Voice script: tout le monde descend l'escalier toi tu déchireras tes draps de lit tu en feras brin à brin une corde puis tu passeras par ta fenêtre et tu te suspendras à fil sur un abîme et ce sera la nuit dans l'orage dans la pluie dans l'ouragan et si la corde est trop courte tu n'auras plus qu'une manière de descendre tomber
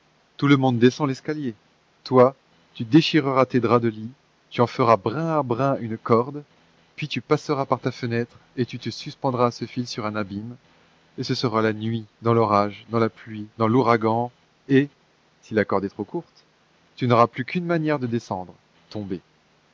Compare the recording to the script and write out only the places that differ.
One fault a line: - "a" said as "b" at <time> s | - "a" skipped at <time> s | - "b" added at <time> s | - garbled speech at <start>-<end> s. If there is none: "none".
- "ce" added at 9.5 s